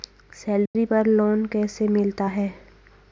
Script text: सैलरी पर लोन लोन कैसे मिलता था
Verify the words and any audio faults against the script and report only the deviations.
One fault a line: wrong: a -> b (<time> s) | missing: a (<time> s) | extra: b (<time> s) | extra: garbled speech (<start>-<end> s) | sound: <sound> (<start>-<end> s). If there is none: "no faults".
sound: dropout (0.7-0.7 s)
missing: लोन (1.5 s)
wrong: था -> है (2.2 s)